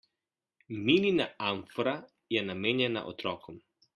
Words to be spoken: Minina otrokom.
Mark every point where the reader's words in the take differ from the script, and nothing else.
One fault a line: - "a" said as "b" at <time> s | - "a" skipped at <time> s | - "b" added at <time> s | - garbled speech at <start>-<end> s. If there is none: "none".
- "amfora je namenjena" added at 1.4 s